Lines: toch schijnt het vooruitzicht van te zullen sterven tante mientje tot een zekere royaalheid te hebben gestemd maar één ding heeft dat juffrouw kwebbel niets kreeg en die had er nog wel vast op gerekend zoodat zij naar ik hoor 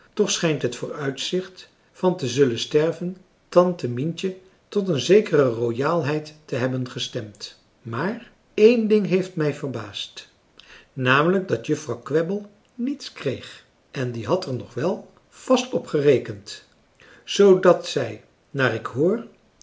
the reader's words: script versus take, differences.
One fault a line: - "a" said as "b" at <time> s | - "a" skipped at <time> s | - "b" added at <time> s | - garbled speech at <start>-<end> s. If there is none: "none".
- "mij verbaasd namelijk" added at 9.3 s